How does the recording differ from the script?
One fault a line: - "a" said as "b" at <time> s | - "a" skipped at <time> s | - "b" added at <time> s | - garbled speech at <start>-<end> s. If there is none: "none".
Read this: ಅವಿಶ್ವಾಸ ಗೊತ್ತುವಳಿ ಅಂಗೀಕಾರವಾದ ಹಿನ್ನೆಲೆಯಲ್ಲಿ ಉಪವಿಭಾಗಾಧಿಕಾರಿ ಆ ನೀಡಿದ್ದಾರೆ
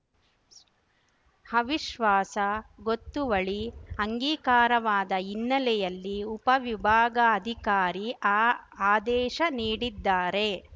- "ಆದೇಶ" added at 8.9 s